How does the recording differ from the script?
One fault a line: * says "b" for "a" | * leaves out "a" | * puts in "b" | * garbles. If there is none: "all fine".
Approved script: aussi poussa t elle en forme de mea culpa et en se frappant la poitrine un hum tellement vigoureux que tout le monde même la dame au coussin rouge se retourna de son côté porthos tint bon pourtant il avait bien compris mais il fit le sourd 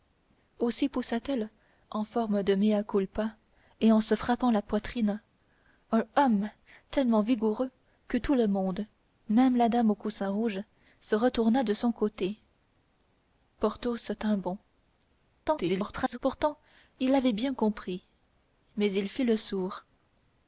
* garbles